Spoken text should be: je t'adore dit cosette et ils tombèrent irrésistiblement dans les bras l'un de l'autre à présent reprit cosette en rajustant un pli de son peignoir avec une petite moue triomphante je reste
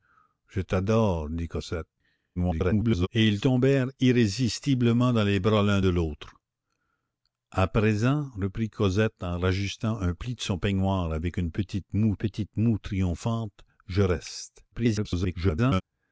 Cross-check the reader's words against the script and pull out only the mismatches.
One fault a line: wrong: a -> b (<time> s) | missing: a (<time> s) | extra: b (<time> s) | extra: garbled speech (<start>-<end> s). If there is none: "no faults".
extra: garbled speech (2.4-3.1 s)
extra: petite moue (12.1 s)
extra: garbled speech (14.7-15.8 s)